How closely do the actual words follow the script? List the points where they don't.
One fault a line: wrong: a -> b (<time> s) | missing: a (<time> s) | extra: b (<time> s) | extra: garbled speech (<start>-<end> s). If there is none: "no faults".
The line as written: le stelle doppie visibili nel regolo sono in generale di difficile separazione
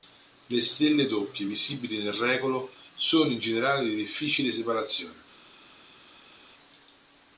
no faults